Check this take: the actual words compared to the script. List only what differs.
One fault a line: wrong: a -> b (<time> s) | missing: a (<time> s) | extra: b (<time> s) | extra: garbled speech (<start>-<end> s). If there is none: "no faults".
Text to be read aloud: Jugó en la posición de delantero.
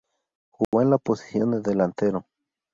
no faults